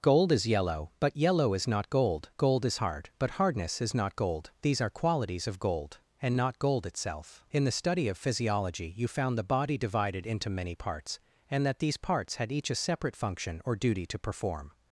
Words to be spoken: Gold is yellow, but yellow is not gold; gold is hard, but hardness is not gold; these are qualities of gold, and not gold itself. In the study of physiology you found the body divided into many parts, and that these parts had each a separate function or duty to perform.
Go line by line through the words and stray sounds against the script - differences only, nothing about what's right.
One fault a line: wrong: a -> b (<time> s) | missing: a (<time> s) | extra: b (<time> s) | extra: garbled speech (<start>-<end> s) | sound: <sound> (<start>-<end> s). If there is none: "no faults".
no faults